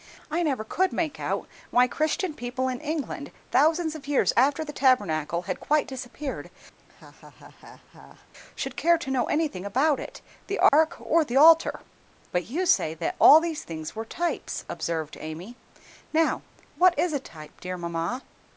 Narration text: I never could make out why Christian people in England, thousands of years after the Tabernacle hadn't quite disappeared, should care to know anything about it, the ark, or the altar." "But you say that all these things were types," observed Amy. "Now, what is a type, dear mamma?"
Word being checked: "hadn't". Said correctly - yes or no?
no